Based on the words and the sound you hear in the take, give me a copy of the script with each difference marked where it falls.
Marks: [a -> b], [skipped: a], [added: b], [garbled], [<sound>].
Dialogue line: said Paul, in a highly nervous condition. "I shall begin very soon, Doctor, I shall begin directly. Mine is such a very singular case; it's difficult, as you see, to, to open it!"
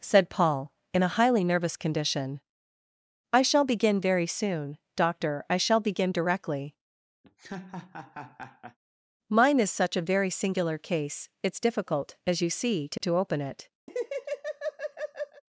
said Paul, in a highly nervous condition. "I shall begin very soon, Doctor, I shall begin directly. [laugh] Mine is such a very singular case; it's difficult, as you see, to, to open it!" [laugh]